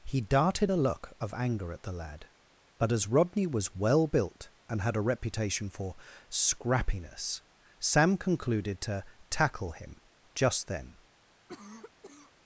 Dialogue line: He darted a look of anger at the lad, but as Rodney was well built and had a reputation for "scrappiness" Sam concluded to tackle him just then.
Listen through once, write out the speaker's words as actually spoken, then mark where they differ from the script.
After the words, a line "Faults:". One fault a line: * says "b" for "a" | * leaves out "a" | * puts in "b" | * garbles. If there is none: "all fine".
He darted a look of anger at the lad, but as Rodney was well built and had a reputation for "scrappiness" Sam concluded to tackle him just then.
Faults:
all fine